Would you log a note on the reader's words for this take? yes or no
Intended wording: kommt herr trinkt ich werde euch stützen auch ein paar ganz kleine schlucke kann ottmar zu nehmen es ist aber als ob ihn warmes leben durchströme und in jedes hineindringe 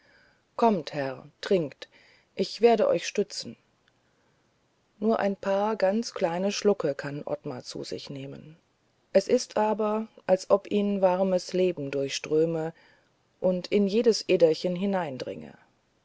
yes